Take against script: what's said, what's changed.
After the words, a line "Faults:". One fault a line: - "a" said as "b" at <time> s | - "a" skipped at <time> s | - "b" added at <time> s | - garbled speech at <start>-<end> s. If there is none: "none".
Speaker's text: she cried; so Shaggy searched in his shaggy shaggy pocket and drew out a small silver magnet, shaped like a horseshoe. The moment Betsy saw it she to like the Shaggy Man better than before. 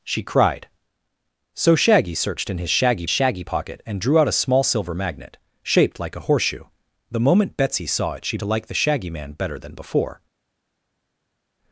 she cried; so Shaggy searched in his shaggy shaggy pocket and drew out a small silver magnet, shaped like a horseshoe. The moment Betsy saw it she to like the Shaggy Man better than before.
Faults:
none